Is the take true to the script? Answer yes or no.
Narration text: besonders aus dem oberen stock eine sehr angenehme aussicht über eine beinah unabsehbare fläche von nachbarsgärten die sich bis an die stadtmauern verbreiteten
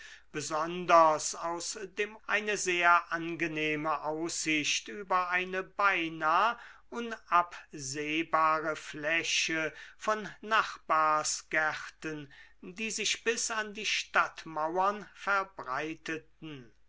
no